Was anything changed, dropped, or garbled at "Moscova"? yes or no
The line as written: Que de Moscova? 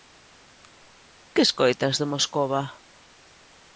no